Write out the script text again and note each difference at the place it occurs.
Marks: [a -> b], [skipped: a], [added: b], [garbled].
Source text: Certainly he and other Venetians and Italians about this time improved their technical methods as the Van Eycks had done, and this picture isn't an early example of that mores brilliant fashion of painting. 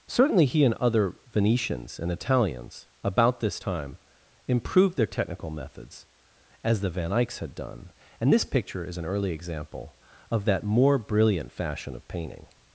Certainly he and other Venetians and Italians about this time improved their technical methods as the Van Eycks had done, and this picture [isn't -> is] an early example of that [mores -> more] brilliant fashion of painting.